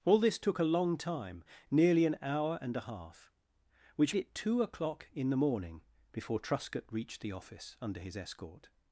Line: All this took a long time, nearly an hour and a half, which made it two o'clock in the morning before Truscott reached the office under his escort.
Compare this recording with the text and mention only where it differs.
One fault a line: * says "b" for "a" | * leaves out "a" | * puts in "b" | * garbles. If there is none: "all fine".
* leaves out "made"